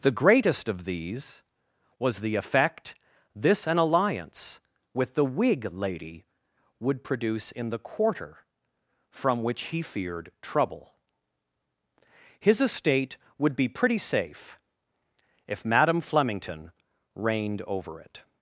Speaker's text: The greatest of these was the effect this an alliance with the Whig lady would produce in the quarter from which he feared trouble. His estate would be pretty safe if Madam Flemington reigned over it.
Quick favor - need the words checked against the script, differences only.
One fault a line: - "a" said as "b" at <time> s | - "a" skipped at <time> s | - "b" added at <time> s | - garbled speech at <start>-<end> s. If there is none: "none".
none